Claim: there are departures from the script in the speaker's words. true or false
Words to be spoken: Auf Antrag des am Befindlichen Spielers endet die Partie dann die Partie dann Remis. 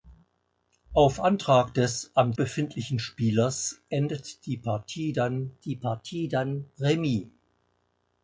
false